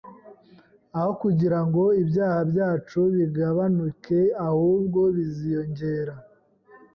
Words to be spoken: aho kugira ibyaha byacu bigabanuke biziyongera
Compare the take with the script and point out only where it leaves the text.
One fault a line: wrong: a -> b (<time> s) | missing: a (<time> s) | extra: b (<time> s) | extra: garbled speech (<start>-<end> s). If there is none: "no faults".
extra: ngo (1.6 s)
extra: ahubwo (4.5 s)